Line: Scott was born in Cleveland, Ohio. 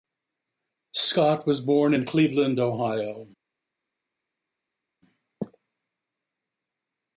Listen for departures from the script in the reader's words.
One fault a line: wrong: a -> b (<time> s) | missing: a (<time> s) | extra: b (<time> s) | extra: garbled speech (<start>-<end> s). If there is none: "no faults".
no faults